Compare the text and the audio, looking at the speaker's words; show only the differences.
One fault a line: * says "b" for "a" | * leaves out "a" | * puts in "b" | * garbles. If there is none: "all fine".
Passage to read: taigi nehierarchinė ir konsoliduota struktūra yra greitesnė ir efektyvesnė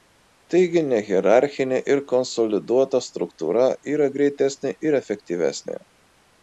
all fine